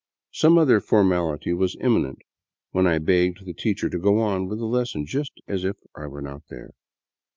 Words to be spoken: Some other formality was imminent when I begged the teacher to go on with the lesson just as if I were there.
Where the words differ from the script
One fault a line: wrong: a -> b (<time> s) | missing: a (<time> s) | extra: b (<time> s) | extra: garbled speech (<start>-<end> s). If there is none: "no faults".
extra: not (6.2 s)